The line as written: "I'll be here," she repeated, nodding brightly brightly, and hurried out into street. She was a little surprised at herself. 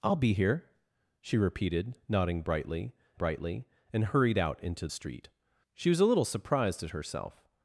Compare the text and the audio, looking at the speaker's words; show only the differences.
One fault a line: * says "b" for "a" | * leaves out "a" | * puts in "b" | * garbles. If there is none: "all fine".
all fine